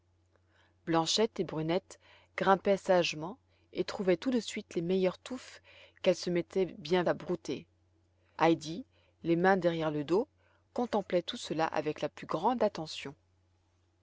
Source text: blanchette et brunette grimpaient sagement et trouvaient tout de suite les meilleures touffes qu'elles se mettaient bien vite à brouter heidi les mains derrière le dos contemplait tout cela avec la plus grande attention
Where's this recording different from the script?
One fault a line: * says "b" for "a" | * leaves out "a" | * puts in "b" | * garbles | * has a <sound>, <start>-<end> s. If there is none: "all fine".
* leaves out "vite"